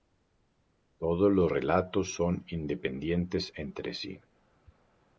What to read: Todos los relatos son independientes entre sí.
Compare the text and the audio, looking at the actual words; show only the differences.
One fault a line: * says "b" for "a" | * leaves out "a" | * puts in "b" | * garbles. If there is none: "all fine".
all fine